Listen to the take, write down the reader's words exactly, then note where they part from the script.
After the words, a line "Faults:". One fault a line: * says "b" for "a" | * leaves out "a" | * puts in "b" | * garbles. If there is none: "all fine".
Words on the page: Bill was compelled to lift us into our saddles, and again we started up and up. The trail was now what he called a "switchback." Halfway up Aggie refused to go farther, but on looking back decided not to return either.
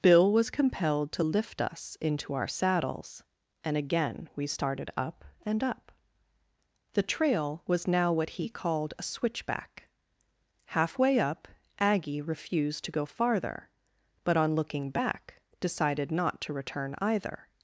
Bill was compelled to lift us into our saddles, and again we started up and up. The trail was now what he called a "switchback." Halfway up Aggie refused to go farther, but on looking back decided not to return either.
Faults:
all fine